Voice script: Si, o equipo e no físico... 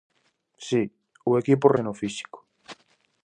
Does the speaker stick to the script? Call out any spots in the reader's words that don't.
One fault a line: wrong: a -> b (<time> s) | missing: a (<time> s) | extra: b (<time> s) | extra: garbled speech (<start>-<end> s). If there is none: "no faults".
no faults